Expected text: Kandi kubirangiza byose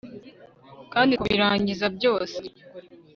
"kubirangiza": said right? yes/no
yes